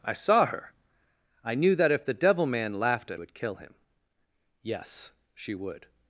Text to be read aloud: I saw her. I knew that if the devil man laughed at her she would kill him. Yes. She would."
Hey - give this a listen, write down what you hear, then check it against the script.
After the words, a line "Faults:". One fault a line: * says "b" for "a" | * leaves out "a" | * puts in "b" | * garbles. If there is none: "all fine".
I saw her. I knew that if the devil man laughed at would kill him. Yes. She would."
Faults:
* leaves out "her she"